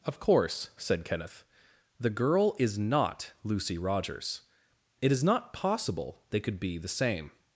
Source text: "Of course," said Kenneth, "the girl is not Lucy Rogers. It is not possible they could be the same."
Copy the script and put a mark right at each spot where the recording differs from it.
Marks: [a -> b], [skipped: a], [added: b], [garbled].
"Of course," said Kenneth, "the girl is not Lucy Rogers. It is not possible they could be the same."